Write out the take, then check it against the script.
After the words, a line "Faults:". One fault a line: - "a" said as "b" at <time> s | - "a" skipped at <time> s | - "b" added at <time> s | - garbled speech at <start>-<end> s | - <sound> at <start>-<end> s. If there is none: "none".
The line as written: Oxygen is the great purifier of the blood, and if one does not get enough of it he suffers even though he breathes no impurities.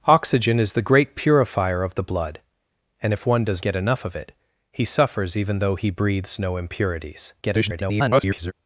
Oxygen is the great purifier of the blood, and if one does get enough of it he suffers even though he breathes no impurities. [garbled]
Faults:
- "not" skipped at 3.6 s
- garbled speech at 7.4-8.5 s